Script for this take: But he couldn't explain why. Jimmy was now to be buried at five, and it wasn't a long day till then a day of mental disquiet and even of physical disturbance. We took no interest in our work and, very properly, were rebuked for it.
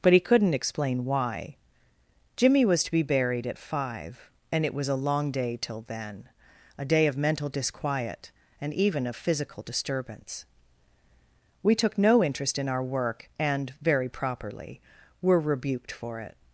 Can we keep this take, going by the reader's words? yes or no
no